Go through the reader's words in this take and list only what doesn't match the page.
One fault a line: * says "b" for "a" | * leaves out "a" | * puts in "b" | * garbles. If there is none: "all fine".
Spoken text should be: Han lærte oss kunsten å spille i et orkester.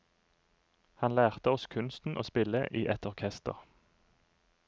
all fine